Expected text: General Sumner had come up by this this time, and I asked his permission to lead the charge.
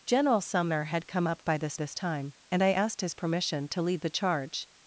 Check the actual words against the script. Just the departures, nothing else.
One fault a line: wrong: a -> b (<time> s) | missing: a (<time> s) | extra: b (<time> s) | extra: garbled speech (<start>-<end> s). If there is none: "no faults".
no faults